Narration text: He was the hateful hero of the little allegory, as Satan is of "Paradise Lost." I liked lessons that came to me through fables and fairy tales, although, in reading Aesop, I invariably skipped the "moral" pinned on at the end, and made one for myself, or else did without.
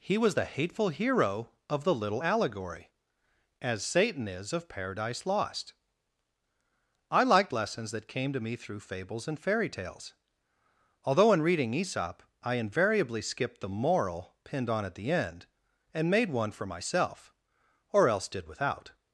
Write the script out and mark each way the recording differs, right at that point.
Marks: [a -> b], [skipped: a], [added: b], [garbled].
He was the hateful hero of the little allegory, as Satan is of "Paradise Lost." I liked lessons that came to me through fables and fairy tales, although, in reading Aesop, I invariably skipped the "moral" pinned on at the end, and made one for myself, or else did without.